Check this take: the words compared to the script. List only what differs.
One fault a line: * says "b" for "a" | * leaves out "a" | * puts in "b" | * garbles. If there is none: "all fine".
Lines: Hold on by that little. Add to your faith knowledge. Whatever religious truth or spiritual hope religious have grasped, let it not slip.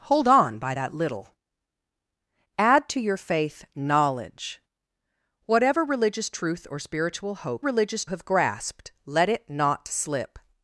all fine